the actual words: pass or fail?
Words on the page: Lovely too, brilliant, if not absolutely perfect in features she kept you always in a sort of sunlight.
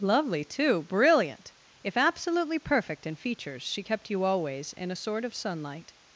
fail